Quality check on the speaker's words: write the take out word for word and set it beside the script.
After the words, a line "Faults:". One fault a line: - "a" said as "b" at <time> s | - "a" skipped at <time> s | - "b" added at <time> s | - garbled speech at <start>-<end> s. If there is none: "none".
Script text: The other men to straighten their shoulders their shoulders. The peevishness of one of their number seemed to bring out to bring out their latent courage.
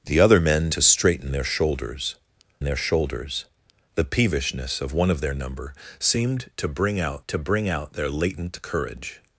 The other men to straighten their shoulders their shoulders. The peevishness of one of their number seemed to bring out to bring out their latent courage.
Faults:
none